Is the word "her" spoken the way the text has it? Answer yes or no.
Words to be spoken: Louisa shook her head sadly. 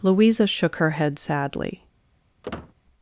yes